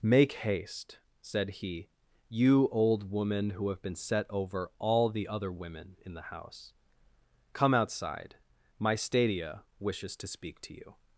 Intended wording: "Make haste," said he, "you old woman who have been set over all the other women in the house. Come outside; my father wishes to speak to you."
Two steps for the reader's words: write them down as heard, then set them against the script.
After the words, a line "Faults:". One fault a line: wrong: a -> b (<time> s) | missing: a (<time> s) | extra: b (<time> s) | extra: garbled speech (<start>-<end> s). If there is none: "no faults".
"Make haste," said he, "you old woman who have been set over all the other women in the house. Come outside; my stadia wishes to speak to you."
Faults:
wrong: father -> stadia (8.9 s)